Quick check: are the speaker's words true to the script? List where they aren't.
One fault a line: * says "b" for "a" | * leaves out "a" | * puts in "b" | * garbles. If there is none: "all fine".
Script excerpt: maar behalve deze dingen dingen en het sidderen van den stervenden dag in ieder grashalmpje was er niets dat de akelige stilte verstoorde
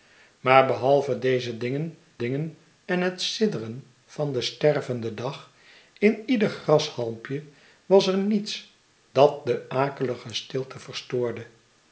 all fine